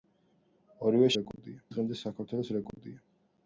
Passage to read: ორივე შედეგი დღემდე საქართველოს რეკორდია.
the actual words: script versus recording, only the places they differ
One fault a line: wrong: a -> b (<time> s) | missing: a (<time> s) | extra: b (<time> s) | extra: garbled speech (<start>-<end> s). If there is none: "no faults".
wrong: შედეგი -> რეკორდია (1.2 s)